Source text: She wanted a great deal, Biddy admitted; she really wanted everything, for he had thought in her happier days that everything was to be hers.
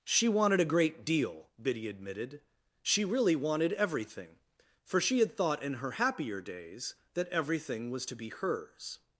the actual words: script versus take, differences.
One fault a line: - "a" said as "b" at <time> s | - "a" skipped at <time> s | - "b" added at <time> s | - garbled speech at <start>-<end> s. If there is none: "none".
- "he" said as "she" at 5.0 s